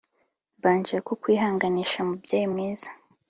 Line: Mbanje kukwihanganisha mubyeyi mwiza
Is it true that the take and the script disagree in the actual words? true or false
false